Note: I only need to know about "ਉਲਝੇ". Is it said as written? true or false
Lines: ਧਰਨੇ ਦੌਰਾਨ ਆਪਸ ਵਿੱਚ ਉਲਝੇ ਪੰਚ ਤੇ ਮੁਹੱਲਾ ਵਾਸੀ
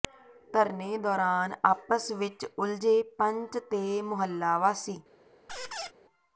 true